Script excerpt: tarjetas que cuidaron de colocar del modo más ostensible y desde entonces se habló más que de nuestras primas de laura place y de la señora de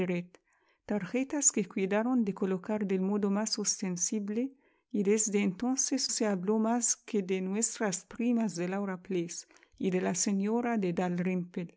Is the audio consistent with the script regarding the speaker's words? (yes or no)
yes